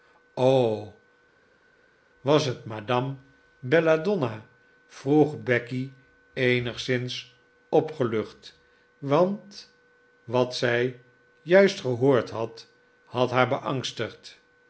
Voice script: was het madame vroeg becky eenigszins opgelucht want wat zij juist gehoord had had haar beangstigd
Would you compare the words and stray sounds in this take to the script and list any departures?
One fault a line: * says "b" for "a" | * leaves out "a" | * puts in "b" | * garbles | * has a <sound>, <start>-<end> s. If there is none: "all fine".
* puts in "belladonna"